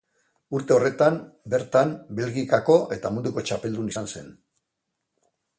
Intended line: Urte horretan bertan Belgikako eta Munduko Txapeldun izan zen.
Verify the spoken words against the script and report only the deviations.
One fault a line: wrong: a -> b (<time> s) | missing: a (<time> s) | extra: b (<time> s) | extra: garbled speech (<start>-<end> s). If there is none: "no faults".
no faults